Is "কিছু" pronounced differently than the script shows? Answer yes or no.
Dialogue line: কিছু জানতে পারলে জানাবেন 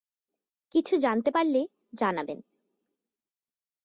no